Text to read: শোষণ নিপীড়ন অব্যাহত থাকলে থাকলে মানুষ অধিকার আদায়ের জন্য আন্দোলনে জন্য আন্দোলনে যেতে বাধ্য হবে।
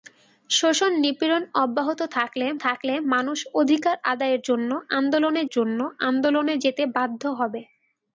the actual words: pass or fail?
pass